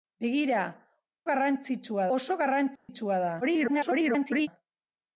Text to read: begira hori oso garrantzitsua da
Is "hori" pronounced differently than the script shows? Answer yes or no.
yes